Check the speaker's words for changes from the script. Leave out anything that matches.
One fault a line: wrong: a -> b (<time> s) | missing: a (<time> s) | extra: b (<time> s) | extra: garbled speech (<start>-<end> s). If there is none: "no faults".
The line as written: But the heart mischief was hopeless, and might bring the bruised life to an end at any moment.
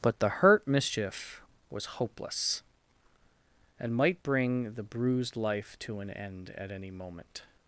wrong: heart -> hurt (0.3 s)